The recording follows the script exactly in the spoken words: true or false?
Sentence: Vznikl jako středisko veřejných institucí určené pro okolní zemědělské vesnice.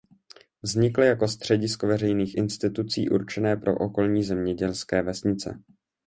true